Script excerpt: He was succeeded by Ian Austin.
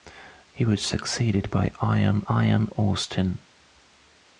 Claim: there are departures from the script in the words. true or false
true